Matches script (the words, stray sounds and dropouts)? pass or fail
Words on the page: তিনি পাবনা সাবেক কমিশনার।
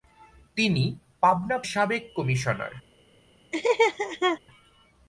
fail